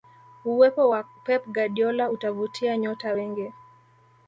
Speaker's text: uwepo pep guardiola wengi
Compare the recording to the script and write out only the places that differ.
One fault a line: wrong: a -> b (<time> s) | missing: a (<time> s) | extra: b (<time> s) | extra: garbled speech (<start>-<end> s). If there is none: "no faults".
extra: wa (0.9 s)
extra: utavutia nyota (2.1 s)